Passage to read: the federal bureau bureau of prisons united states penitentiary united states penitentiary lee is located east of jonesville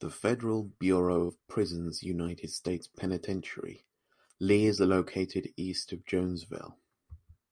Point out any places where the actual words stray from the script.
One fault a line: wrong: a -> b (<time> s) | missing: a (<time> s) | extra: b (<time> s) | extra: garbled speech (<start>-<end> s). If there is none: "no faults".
missing: bureau (1.3 s)
missing: united states penitentiary (3.8 s)